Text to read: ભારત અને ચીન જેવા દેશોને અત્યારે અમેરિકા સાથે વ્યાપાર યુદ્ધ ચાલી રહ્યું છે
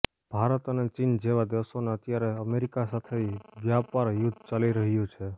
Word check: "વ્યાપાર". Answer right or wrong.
right